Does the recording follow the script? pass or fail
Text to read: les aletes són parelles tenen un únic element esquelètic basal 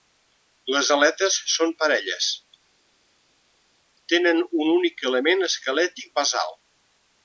pass